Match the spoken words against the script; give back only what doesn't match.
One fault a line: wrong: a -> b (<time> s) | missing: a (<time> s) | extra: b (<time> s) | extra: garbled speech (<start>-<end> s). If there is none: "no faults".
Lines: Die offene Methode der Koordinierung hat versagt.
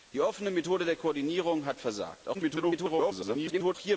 extra: garbled speech (2.3-3.8 s)